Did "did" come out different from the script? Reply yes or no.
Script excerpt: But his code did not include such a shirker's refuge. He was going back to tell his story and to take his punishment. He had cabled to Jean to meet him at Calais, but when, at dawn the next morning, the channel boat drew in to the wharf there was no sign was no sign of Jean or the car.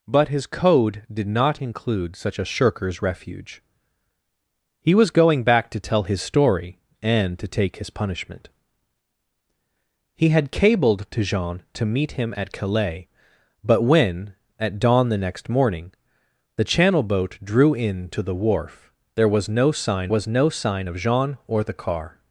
no